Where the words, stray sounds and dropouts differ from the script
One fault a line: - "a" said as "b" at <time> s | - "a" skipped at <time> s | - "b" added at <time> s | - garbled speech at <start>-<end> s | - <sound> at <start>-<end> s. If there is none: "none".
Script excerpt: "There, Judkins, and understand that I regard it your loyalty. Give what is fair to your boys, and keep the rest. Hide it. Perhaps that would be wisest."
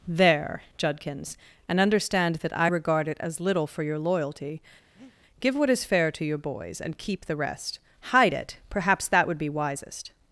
- "as little for" added at 3.2 s
- breath at 5.0-5.2 s